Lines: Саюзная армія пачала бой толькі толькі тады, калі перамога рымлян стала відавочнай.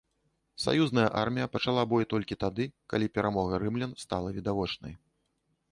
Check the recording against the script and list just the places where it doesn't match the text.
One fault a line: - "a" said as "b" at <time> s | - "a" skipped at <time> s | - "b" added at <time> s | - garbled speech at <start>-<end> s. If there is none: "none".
- "толькі" skipped at 2.4 s